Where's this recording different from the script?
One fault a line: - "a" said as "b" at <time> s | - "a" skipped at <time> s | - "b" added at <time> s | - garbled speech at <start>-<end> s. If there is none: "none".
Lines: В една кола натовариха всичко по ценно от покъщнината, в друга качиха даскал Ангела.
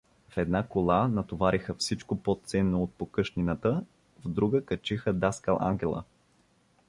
none